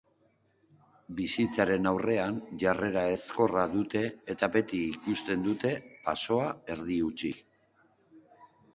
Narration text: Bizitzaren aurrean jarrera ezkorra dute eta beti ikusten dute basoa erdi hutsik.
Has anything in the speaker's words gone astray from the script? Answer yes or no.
no